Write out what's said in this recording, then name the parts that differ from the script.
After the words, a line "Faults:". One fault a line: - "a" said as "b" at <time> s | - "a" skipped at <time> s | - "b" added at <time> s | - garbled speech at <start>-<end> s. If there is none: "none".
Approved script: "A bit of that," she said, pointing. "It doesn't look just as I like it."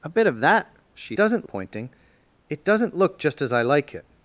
"A bit of that," she doesn't, pointing. "It doesn't look just as I like it."
Faults:
- "said" said as "doesn't" at 1.2 s